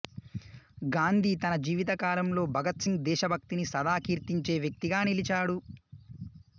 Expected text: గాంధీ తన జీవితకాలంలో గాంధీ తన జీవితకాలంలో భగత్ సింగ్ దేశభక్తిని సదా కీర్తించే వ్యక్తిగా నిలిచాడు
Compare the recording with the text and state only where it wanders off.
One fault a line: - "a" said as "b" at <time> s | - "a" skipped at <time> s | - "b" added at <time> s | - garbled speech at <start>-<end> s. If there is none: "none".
- "గాంధీ తన జీవితకాలంలో" skipped at 2.5 s